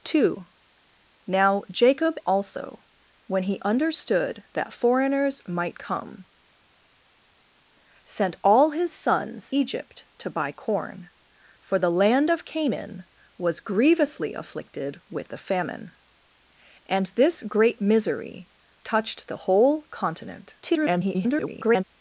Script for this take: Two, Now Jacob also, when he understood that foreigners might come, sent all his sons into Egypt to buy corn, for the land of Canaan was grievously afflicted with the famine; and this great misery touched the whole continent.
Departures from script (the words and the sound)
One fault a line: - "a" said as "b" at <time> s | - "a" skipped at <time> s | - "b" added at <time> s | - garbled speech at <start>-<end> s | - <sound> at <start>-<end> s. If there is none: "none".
- "into" skipped at 9.5 s
- garbled speech at 20.6-21.8 s